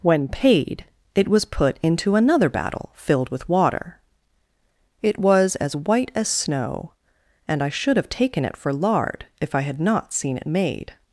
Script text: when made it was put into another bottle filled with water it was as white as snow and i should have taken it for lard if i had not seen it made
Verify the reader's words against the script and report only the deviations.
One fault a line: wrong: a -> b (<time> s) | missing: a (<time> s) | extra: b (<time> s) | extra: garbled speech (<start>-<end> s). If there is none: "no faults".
wrong: made -> paid (0.3 s)
wrong: bottle -> battle (2.5 s)